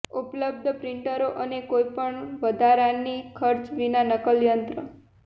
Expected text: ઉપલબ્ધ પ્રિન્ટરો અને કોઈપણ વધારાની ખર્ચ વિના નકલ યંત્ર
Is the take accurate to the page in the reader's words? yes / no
yes